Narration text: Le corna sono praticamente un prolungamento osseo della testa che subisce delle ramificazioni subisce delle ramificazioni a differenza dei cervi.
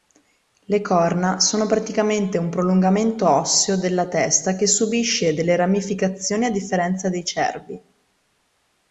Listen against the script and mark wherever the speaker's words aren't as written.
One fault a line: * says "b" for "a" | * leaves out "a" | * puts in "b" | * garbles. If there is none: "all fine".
* leaves out "subisce delle ramificazioni"